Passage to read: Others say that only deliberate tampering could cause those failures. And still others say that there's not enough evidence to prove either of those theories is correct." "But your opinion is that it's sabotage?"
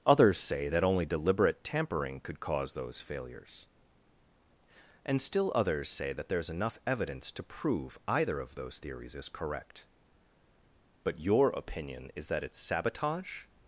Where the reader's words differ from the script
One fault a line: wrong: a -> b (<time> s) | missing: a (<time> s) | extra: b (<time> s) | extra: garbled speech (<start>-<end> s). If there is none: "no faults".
missing: not (6.5 s)